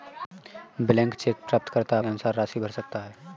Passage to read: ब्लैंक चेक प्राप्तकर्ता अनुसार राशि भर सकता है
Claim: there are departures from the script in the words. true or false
false